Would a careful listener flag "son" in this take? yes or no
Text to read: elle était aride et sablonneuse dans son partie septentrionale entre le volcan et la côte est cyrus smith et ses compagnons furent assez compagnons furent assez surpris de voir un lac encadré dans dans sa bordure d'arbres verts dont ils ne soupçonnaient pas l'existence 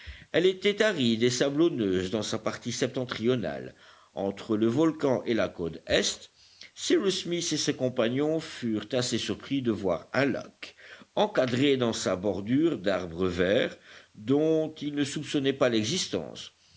yes